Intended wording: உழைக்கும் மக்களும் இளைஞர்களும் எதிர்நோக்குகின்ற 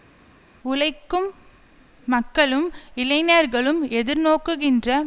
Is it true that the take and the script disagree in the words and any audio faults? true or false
false